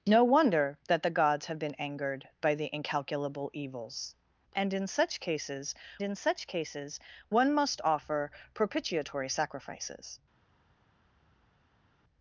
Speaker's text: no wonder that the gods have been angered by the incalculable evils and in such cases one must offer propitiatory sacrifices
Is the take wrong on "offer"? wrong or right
right